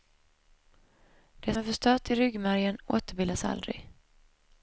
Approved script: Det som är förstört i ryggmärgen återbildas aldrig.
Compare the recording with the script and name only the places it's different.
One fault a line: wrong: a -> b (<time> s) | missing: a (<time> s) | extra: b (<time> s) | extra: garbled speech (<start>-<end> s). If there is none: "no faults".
missing: som (1.5 s)